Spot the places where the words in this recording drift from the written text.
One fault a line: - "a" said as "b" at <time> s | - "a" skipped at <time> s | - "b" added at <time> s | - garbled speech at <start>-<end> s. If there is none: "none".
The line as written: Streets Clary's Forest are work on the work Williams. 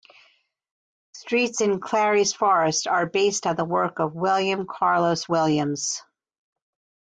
- "in" added at 1.6 s
- "work" said as "based" at 3.0 s
- "of William Carlos" added at 4.0 s